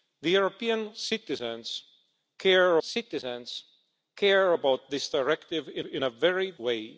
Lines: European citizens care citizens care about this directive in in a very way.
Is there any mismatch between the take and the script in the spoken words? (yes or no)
no